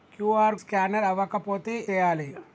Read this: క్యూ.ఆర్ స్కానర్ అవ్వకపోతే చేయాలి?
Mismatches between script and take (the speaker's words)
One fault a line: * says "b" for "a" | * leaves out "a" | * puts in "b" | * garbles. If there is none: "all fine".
all fine